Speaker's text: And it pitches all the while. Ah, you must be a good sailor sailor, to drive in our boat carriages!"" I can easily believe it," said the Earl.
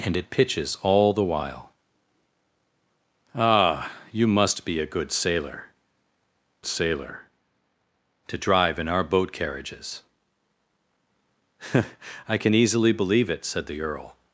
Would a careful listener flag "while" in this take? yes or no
no